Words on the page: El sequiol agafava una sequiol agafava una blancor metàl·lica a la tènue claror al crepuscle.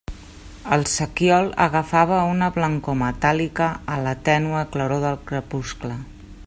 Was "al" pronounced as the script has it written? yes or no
no